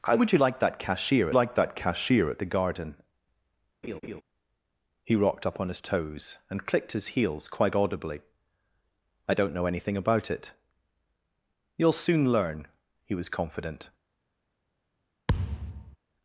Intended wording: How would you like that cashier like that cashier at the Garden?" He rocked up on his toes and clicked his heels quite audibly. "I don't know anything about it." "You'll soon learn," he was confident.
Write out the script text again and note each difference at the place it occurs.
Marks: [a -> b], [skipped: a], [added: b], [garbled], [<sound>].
How would you like that cashier like that cashier at the Garden?" [laugh] He rocked up on his toes and clicked his heels quite audibly. "I don't know anything about it." "You'll soon learn," he was confident. [thud]